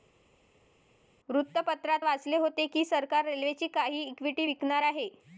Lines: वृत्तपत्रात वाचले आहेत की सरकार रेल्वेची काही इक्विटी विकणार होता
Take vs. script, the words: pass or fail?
fail